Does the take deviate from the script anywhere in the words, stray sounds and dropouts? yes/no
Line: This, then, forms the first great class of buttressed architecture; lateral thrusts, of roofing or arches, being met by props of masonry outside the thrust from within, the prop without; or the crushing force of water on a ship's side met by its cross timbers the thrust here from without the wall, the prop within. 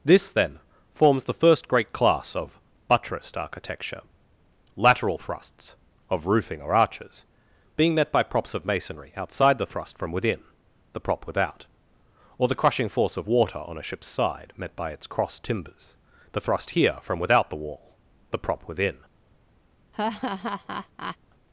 yes